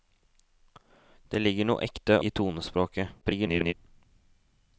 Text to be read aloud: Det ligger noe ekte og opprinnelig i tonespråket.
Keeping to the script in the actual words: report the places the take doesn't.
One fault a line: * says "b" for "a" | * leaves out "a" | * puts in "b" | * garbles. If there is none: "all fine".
* leaves out "og opprinnelig"
* garbles